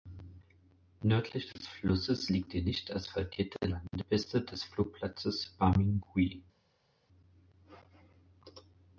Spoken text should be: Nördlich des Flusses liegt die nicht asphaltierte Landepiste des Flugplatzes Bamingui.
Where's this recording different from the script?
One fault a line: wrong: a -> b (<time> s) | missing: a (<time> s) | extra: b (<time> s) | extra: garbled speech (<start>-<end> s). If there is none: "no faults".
no faults